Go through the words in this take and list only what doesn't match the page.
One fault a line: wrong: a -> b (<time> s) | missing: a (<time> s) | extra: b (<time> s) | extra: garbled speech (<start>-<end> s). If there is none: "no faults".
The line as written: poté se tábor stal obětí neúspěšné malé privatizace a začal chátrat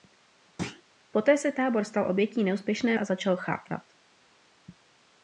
missing: malé privatizace (3.0 s)